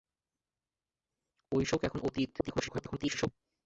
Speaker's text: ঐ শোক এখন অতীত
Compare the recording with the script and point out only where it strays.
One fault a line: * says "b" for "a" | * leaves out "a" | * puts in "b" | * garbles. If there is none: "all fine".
* garbles